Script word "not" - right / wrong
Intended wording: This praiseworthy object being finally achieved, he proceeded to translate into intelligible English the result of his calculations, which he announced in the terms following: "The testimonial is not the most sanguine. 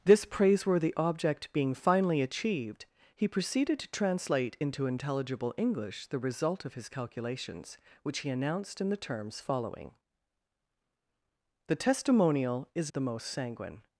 wrong